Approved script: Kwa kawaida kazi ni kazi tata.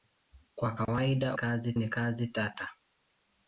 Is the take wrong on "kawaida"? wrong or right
right